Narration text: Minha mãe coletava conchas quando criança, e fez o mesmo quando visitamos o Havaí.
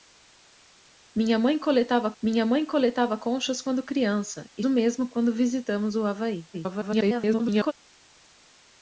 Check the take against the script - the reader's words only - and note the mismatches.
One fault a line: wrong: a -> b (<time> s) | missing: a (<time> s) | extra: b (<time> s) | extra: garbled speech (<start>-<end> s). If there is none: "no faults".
extra: minha mãe coletava (2.2 s)
missing: fez (4.6 s)
extra: garbled speech (6.5-7.7 s)